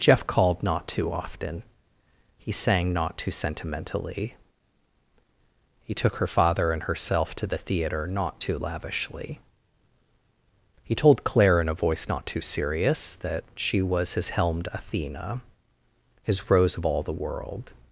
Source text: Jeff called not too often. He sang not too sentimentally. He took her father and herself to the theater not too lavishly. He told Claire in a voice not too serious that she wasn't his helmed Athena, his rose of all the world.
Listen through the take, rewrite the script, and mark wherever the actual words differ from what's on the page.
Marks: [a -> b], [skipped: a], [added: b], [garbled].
Jeff called not too often. He sang not too sentimentally. He took her father and herself to the theater not too lavishly. He told Claire in a voice not too serious that she [wasn't -> was] his helmed Athena, his rose of all the world.